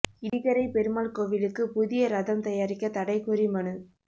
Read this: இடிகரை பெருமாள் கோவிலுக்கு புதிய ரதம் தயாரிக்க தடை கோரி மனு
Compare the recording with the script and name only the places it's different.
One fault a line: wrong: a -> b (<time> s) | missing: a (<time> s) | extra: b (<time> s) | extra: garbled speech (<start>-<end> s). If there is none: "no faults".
no faults